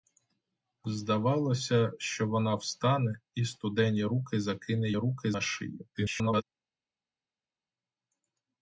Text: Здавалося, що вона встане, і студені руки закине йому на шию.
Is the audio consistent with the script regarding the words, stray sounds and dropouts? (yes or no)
no